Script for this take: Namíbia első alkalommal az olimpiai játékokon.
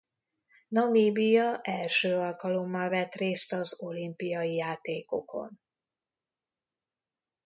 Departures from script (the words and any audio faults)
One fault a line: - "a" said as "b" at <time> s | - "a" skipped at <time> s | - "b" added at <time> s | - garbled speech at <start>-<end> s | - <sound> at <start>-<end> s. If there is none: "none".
- "vett részt" added at 2.9 s